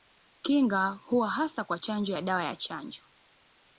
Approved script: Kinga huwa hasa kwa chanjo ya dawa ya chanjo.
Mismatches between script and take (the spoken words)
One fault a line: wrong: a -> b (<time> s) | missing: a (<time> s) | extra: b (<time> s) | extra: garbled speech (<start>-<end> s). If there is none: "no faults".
no faults